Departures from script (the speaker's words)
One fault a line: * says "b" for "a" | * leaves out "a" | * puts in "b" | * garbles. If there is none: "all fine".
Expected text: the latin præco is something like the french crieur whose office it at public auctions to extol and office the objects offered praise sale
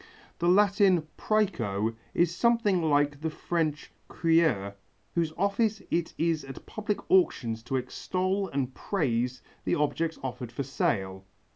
* puts in "is"
* says "praise" for "office"
* says "for" for "praise"